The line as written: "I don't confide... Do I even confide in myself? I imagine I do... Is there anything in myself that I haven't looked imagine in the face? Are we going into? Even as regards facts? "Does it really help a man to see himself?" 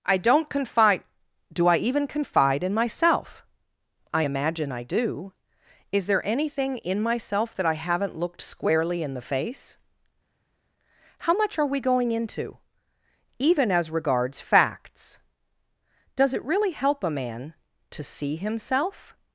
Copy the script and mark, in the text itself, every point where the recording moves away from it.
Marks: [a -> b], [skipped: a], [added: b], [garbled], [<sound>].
"I don't confide... Do I even confide in myself? I imagine I do... Is there anything in myself that I haven't looked [imagine -> squarely] in the face? [added: How much] Are we going into? Even as regards facts? "Does it really help a man to see himself?"